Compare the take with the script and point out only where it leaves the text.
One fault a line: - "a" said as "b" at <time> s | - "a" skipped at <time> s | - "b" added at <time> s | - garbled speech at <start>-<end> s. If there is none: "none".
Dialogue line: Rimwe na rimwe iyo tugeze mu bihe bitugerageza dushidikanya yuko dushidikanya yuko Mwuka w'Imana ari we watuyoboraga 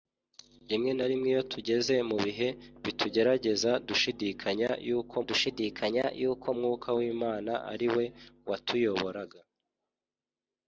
none